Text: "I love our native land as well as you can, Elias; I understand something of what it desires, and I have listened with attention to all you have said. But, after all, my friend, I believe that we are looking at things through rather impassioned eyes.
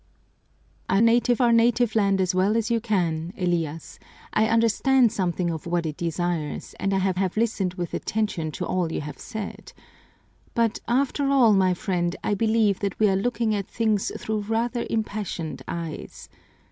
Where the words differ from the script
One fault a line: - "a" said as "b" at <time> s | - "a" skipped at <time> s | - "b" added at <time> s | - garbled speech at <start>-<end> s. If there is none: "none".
- "love" said as "native" at 1.0 s
- "have" added at 7.2 s